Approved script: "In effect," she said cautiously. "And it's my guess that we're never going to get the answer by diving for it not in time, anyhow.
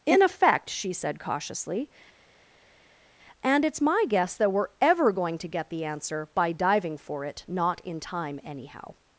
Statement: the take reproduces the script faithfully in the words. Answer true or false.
false